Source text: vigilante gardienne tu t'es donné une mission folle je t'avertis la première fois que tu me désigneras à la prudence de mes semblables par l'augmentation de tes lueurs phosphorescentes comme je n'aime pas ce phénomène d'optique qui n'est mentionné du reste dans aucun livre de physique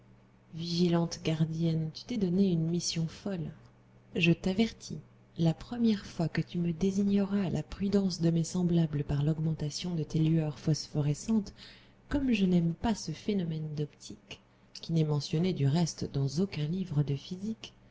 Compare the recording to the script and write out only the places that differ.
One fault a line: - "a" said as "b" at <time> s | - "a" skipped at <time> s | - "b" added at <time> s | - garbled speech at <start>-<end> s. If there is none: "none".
none